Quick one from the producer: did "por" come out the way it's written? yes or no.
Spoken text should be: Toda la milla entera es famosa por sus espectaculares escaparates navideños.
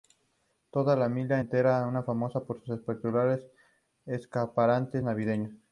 yes